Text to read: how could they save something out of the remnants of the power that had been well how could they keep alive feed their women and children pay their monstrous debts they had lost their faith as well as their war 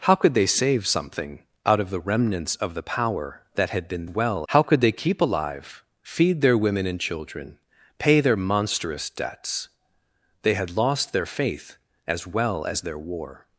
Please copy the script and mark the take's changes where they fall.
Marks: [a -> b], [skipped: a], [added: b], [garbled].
how could they save something out of the remnants of the power that had been well how could they keep alive feed their women and children pay their monstrous debts they had lost their faith as well as their war